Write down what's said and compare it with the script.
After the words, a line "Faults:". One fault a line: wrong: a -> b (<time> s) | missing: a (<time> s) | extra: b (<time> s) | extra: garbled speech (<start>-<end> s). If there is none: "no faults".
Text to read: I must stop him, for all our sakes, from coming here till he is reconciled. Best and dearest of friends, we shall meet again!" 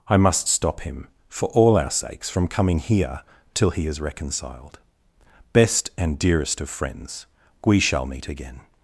I must stop him, for all our sakes, from coming here till he is reconciled. Best and dearest of friends, we shall meet again!"
Faults:
no faults